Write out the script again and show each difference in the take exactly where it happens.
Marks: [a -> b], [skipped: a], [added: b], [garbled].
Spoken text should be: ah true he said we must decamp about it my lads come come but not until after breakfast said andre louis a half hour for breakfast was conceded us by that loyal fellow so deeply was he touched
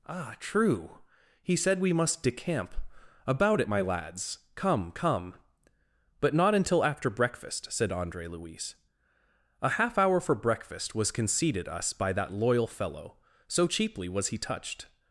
ah true he said we must decamp about it my lads come come but not until after breakfast said andre louis a half hour for breakfast was conceded us by that loyal fellow so [deeply -> cheaply] was he touched